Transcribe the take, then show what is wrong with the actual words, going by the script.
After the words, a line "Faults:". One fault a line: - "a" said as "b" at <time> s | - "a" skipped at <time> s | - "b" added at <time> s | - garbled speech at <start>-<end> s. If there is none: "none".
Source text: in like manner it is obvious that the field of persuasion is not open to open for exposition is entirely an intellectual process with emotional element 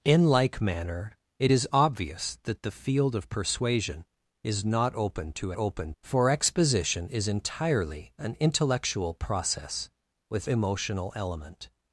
in like manner it is obvious that the field of persuasion is not open to open for exposition is entirely an intellectual process with emotional element
Faults:
none